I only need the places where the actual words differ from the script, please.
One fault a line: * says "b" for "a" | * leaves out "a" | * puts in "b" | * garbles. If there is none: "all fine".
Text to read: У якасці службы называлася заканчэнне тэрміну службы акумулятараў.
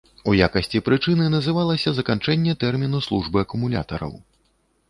* says "прычыны" for "службы"